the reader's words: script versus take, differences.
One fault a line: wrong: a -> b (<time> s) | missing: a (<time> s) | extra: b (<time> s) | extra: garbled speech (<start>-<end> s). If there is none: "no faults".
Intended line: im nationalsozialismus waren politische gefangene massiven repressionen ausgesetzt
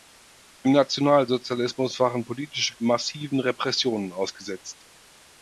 missing: gefangene (2.7 s)